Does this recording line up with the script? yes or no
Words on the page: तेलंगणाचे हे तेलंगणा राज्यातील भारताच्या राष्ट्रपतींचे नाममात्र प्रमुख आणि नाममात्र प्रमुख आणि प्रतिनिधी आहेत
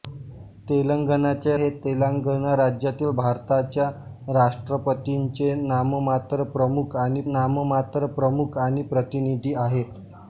yes